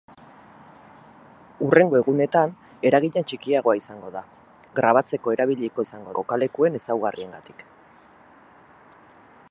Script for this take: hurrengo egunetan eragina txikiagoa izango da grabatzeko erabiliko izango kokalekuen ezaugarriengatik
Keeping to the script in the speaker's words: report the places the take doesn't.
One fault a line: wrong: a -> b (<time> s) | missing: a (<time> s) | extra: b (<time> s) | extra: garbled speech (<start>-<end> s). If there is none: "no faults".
no faults